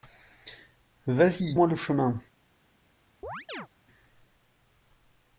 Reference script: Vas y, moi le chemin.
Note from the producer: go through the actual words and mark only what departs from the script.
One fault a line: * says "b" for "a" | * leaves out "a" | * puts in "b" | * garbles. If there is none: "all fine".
all fine